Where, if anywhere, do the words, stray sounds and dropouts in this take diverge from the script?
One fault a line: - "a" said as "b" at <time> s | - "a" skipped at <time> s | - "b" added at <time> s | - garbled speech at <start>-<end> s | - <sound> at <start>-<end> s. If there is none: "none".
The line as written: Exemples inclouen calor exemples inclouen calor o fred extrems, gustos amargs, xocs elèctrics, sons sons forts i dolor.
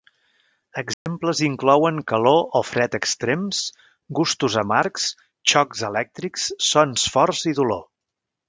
- dropout at 0.9-1.1 s
- "exemples inclouen calor" skipped at 2.4 s
- "sons" skipped at 7.1 s